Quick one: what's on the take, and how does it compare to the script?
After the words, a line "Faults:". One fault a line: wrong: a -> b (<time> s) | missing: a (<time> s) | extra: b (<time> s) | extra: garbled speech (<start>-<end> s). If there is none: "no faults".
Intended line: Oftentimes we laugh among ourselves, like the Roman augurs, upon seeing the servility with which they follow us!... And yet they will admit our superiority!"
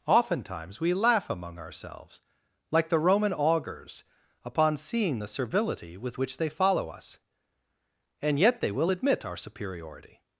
Oftentimes we laugh among ourselves, like the Roman augurs, upon seeing the servility with which they follow us!... And yet they will admit our superiority!"
Faults:
no faults